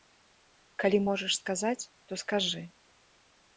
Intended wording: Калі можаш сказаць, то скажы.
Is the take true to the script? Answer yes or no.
yes